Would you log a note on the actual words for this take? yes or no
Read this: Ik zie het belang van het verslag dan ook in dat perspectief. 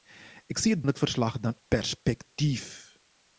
yes